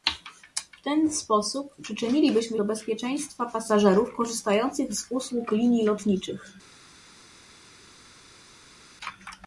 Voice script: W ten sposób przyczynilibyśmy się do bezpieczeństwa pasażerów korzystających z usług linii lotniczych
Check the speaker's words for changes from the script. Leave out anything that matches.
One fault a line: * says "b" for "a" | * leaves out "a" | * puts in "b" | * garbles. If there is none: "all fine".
* leaves out "się"